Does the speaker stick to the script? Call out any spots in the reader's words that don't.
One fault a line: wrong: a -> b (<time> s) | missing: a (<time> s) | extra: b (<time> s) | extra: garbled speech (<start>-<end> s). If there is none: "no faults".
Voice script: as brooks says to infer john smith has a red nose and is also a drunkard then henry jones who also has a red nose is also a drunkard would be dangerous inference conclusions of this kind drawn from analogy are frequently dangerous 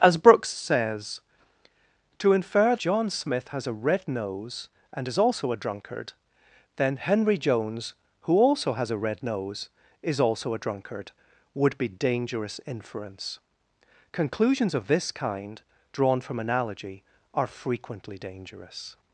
no faults